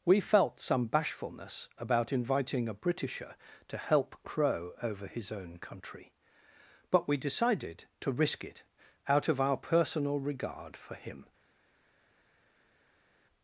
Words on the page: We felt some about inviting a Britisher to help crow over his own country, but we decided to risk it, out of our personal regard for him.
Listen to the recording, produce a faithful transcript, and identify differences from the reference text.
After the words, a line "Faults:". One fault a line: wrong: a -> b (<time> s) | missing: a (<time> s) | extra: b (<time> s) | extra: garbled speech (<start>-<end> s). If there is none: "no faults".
We felt some bashfulness about inviting a Britisher to help crow over his own country, but we decided to risk it, out of our personal regard for him.
Faults:
extra: bashfulness (0.9 s)